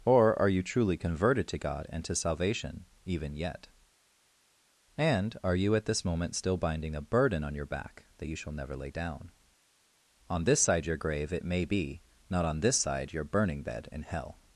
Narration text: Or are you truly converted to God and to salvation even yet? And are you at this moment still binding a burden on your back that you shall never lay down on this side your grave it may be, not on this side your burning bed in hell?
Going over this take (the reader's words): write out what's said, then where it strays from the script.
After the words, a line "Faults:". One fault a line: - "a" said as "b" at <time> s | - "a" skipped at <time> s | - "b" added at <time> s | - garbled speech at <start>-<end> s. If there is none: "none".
Or are you truly converted to God and to salvation even yet? And are you at this moment still binding a burden on your back that you shall never lay down on this side your grave it may be, not on this side your burning bed in hell?
Faults:
none